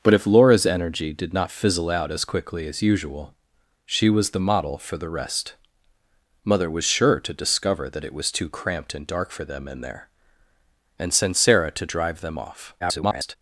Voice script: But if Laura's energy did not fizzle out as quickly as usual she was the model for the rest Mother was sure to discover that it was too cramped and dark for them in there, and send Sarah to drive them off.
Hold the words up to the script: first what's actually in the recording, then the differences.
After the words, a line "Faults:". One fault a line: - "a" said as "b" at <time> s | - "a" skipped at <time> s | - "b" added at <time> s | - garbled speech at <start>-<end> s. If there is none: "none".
But if Laura's energy did not fizzle out as quickly as usual she was the model for the rest Mother was sure to discover that it was too cramped and dark for them in there, and send Sarah to drive them off. [garbled]
Faults:
- garbled speech at 12.8-13.4 s